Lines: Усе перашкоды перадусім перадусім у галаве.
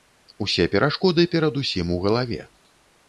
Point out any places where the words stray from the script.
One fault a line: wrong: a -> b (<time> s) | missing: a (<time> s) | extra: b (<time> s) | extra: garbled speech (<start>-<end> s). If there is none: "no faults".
missing: перадусім (1.9 s)